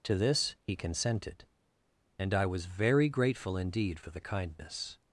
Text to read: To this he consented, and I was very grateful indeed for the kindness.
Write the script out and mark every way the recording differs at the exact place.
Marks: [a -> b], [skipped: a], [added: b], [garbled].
To this he consented, and I was very grateful indeed for the kindness.